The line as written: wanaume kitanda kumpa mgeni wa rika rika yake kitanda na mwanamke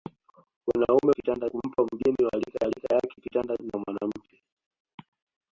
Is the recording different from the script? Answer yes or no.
no